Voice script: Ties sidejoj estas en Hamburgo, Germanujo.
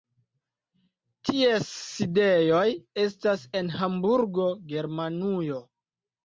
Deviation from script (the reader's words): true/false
false